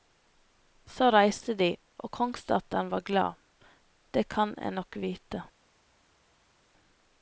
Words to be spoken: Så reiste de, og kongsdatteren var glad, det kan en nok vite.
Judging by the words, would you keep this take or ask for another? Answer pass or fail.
pass